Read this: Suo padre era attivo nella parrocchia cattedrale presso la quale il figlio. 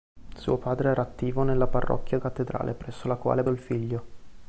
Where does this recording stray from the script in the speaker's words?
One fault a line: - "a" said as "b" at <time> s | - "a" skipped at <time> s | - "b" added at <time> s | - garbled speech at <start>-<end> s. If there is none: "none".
none